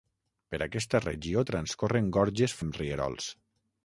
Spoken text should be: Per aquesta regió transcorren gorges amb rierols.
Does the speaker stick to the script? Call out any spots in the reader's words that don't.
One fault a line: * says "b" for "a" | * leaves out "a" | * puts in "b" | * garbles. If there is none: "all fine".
all fine